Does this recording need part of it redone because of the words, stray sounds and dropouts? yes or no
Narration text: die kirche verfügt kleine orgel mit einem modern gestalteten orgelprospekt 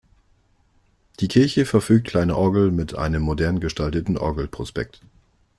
no